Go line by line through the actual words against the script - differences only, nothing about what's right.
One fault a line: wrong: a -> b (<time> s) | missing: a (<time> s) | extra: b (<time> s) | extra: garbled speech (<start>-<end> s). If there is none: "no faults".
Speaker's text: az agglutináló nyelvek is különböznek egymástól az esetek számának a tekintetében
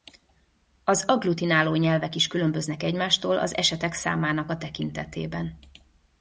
no faults